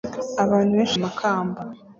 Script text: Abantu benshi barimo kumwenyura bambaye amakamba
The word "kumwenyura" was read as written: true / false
false